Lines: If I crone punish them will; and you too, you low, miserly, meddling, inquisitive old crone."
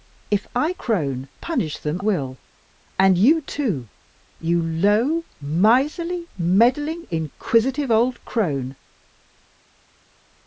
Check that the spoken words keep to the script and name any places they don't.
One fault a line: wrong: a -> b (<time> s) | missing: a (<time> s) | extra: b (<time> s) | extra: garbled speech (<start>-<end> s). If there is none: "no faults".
no faults